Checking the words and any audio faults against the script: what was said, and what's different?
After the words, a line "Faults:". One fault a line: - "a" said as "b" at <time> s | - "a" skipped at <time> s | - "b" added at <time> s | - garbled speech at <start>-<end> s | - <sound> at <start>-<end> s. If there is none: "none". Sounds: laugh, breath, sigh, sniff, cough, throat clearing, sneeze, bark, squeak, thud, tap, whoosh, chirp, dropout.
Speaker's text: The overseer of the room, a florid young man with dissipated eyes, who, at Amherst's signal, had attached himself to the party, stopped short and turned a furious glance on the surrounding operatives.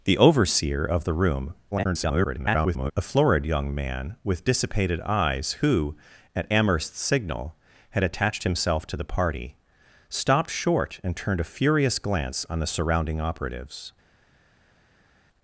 The overseer of the room, [garbled] a florid young man with dissipated eyes, who, at Amherst's signal, had attached himself to the party, stopped short and turned a furious glance on the surrounding operatives.
Faults:
- garbled speech at 1.7-2.9 s